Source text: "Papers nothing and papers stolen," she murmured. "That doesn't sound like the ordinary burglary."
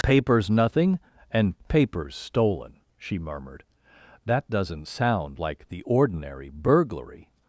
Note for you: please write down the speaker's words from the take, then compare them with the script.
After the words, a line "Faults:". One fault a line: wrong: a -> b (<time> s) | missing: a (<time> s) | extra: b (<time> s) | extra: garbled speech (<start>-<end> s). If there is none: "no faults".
"Papers nothing and papers stolen," she murmured. "That doesn't sound like the ordinary burglary."
Faults:
no faults